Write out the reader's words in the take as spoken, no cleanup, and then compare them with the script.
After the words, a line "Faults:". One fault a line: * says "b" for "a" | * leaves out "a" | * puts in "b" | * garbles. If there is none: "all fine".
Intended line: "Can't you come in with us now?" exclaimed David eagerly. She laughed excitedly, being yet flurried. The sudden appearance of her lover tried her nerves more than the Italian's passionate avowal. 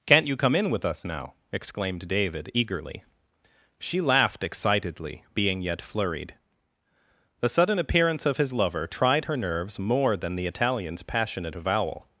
"Can't you come in with us now?" exclaimed David eagerly. She laughed excitedly, being yet flurried. The sudden appearance of his lover tried her nerves more than the Italian's passionate avowal.
Faults:
* says "his" for "her"